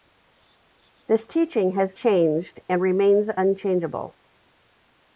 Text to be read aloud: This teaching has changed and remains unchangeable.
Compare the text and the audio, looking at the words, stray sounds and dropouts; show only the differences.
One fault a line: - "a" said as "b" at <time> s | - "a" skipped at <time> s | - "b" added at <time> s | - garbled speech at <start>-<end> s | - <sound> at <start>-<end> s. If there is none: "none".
none